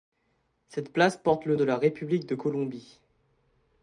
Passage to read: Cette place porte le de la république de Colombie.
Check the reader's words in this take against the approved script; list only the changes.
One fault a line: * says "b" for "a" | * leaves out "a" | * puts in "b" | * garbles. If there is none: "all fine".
all fine